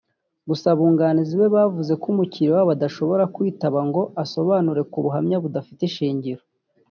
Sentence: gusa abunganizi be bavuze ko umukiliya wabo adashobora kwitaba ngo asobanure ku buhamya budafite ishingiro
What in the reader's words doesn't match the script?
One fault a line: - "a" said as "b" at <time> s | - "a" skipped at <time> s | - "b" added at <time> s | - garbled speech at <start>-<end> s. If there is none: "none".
none